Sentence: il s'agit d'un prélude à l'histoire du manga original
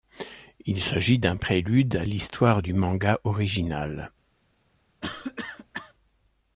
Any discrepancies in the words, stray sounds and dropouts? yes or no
yes